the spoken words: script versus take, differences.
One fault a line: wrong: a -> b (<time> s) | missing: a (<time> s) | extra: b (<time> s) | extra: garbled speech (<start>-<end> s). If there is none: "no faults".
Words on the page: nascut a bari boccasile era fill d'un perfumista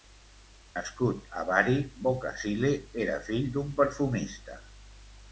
no faults